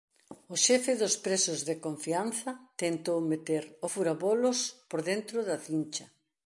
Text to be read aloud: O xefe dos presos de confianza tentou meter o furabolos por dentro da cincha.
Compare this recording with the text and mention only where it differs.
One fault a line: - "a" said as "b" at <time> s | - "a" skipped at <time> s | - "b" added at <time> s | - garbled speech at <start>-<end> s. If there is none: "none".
none